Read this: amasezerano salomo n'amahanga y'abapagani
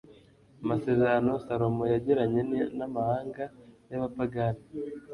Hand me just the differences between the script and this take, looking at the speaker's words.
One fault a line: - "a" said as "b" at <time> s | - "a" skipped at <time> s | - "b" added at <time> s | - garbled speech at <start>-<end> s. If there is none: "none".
- "yagiranye" added at 1.9 s